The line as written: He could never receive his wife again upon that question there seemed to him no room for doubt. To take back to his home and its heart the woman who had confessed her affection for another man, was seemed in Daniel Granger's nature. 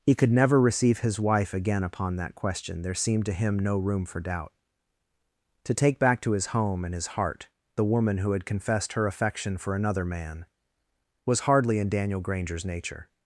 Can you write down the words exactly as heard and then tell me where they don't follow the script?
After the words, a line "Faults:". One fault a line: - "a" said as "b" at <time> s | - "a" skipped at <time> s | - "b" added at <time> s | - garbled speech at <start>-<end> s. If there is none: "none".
He could never receive his wife again upon that question there seemed to him no room for doubt. To take back to his home and his heart the woman who had confessed her affection for another man, was hardly in Daniel Granger's nature.
Faults:
- "its" said as "his" at 6.9 s
- "seemed" said as "hardly" at 11.4 s